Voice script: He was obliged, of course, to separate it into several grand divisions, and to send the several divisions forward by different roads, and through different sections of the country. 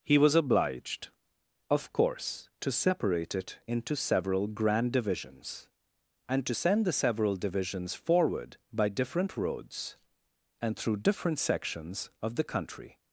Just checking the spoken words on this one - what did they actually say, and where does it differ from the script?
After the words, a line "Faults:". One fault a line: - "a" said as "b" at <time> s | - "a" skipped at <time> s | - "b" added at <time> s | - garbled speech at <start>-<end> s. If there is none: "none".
He was obliged, of course, to separate it into several grand divisions, and to send the several divisions forward by different roads, and through different sections of the country.
Faults:
none